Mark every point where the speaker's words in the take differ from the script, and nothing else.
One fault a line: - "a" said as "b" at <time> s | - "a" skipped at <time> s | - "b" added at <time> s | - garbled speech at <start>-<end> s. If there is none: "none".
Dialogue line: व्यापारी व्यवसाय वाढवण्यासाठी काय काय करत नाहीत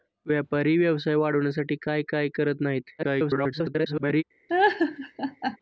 - garbled speech at 3.0-4.2 s